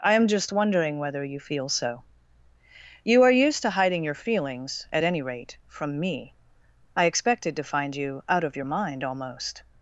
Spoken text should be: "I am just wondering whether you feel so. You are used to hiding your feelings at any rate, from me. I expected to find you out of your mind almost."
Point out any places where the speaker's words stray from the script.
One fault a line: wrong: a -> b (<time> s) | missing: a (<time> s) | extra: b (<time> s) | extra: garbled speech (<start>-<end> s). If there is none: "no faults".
no faults